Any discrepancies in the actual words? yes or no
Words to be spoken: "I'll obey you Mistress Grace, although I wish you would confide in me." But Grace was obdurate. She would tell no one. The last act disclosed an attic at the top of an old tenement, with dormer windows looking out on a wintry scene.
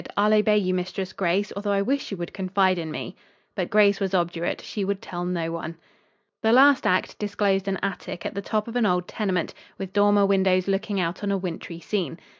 no